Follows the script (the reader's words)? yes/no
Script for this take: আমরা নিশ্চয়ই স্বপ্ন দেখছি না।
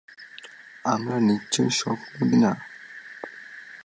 no